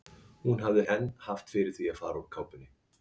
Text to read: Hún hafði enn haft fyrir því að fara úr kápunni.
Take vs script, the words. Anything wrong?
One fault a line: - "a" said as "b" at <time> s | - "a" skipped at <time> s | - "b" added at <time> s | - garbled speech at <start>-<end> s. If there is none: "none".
none